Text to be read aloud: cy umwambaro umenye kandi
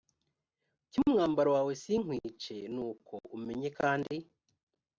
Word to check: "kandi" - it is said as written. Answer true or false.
true